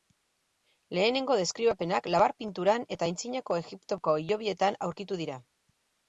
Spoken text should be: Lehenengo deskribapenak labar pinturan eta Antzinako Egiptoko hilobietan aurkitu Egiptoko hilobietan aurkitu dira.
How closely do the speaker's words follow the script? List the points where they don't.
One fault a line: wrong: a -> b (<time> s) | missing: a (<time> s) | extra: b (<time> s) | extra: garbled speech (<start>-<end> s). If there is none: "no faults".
missing: Egiptoko hilobietan aurkitu (5.2 s)